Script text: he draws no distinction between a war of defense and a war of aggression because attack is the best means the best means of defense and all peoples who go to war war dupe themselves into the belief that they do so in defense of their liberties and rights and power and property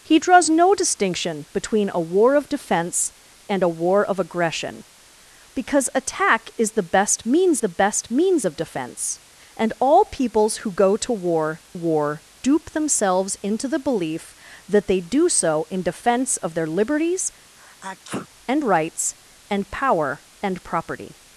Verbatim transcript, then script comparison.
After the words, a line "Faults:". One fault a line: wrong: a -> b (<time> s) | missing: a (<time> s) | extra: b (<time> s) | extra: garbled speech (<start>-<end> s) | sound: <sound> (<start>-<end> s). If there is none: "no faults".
he draws no distinction between a war of defense and a war of aggression because attack is the best means the best means of defense and all peoples who go to war war dupe themselves into the belief that they do so in defense of their liberties and rights and power and property
Faults:
sound: sneeze (17.6-18.3 s)